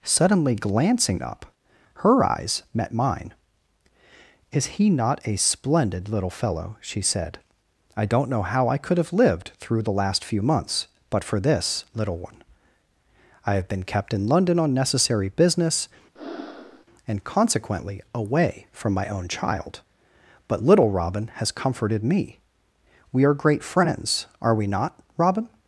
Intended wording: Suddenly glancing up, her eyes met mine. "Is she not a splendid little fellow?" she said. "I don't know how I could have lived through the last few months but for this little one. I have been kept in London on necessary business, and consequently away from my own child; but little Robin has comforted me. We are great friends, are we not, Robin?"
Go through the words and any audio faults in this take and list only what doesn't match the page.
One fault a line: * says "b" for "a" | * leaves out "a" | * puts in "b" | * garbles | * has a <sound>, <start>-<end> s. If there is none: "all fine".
* says "he" for "she"
* has a breath, 16.2-16.9 s